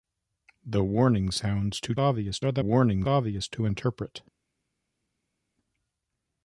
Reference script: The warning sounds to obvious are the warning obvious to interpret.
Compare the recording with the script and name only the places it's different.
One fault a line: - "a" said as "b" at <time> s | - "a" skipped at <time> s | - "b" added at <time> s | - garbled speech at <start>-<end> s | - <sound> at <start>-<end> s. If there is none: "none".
none